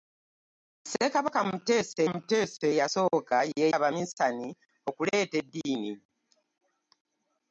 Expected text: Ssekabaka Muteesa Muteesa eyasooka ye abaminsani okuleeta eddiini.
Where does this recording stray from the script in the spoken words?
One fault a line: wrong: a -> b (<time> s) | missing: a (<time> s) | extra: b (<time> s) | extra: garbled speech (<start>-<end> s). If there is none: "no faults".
no faults